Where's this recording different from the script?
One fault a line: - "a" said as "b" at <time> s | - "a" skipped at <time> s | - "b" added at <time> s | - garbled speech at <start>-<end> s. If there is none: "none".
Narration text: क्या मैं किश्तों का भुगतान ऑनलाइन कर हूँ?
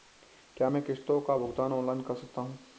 - "सकता" added at 2.1 s